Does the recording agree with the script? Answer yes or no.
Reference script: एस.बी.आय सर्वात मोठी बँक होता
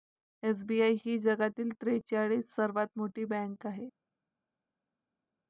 no